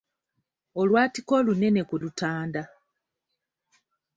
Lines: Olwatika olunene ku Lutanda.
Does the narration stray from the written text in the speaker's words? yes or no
no